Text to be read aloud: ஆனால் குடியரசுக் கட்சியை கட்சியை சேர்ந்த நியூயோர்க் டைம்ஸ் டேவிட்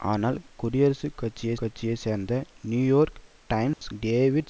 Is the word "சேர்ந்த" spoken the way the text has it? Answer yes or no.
yes